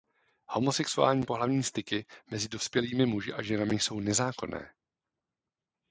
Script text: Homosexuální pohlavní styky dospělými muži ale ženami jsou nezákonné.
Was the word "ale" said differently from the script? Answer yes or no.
yes